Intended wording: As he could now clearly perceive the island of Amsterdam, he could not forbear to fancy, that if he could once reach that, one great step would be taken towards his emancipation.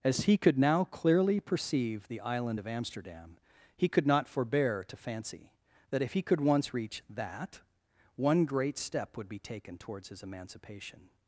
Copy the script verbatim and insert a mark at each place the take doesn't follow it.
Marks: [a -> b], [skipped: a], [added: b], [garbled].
As he could now clearly perceive the island of Amsterdam, he could not forbear to fancy, that if he could once reach that, one great step would be taken towards his emancipation.